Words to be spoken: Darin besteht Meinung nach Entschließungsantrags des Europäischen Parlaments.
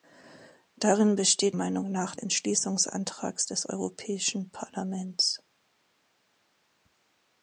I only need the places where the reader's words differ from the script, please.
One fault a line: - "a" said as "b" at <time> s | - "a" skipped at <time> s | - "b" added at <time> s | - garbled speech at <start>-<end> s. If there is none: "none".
none